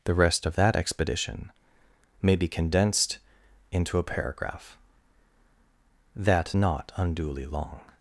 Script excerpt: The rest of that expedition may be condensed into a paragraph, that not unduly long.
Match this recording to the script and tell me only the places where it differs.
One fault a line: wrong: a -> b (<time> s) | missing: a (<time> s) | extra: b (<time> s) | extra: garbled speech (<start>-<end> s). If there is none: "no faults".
no faults